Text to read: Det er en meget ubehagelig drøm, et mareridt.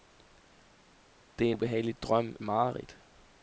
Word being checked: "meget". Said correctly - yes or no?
no